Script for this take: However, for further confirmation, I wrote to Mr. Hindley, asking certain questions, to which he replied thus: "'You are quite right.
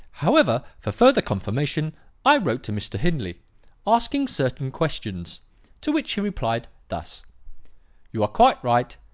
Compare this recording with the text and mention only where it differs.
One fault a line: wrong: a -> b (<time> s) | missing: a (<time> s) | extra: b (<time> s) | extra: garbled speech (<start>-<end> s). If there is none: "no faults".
no faults